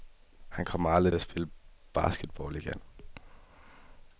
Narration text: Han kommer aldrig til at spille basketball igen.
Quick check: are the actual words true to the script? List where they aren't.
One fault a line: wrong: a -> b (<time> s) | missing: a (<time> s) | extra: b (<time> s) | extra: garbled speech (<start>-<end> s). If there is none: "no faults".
missing: til (1.1 s)